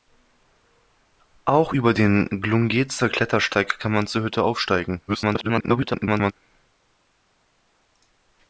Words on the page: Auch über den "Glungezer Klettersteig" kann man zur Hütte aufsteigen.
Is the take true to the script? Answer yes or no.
no